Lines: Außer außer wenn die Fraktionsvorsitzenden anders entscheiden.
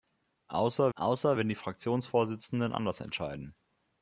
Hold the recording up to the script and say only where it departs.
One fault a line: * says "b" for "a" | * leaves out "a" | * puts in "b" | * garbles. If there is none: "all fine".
all fine